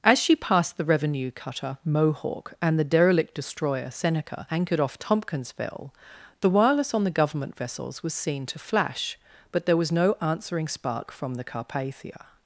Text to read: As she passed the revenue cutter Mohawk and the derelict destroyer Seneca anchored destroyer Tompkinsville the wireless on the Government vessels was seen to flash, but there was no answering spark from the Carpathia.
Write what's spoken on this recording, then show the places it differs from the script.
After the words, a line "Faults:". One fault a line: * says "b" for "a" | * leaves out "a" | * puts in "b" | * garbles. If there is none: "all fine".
As she passed the revenue cutter Mohawk and the derelict destroyer Seneca anchored off Tompkinsville the wireless on the Government vessels was seen to flash, but there was no answering spark from the Carpathia.
Faults:
* says "off" for "destroyer"